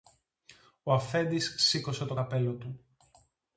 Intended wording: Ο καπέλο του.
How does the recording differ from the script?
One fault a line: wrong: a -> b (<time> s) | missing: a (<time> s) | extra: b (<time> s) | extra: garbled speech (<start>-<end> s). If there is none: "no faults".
extra: αφέντης σήκωσε το (0.9 s)